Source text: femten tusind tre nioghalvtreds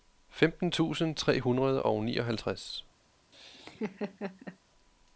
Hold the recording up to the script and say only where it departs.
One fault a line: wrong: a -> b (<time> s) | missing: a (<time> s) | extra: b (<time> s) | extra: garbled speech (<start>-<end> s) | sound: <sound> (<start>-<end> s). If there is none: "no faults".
extra: hundrede og (1.4 s)
sound: laugh (3.3-4.6 s)